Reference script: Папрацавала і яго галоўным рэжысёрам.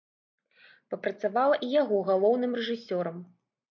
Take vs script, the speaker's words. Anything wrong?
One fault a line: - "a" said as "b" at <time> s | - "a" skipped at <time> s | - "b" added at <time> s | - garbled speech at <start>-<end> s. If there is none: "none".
none